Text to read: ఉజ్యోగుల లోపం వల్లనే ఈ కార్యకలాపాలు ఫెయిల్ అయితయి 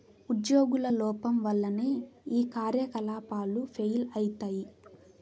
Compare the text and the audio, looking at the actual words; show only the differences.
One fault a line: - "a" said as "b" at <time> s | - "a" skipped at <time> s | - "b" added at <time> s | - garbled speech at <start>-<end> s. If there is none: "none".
none